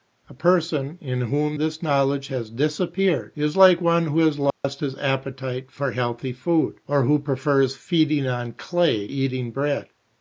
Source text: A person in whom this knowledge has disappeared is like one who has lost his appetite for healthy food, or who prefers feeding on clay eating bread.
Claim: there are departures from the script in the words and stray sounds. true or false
true